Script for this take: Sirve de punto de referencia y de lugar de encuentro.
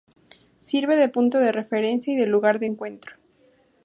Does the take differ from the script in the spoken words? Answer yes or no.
no